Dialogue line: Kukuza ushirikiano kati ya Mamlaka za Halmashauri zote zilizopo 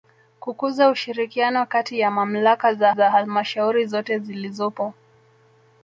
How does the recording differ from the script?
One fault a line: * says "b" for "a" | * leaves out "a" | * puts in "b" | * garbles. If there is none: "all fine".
* puts in "za"